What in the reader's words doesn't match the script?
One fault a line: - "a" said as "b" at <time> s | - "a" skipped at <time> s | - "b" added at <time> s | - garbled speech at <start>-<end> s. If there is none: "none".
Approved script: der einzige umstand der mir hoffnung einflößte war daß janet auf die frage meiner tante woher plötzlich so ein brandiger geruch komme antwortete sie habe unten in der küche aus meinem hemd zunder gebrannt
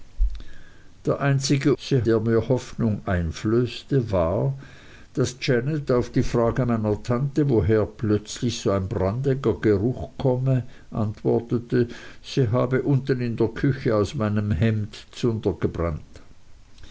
- "umstand" said as "sie" at 1.8 s